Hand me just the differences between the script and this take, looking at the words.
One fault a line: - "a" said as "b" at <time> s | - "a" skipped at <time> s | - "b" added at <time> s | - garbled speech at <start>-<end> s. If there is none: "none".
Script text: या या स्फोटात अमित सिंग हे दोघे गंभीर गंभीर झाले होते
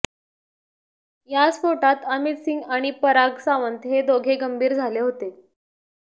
- "या" skipped at 1.5 s
- "आणि पराग सावंत" added at 2.7 s
- "गंभीर" skipped at 4.7 s